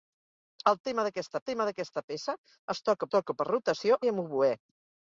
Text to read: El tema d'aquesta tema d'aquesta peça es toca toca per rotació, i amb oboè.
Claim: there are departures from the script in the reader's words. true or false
false